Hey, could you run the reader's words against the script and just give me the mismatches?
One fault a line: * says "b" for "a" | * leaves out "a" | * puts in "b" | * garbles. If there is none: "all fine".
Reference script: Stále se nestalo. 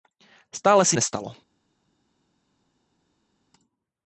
all fine